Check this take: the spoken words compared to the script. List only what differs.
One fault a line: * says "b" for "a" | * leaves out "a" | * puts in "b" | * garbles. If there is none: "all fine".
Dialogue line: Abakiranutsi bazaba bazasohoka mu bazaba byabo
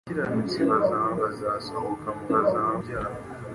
all fine